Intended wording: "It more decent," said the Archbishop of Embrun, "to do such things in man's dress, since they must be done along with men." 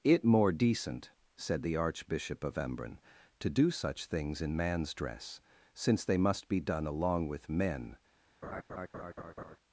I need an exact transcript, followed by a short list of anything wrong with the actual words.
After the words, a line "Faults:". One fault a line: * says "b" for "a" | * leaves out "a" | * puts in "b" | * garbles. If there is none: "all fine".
"It more decent," said the Archbishop of Embrun, "to do such things in man's dress, since they must be done along with men."
Faults:
all fine